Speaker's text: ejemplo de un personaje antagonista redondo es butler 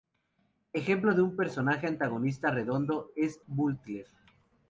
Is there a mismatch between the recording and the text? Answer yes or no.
no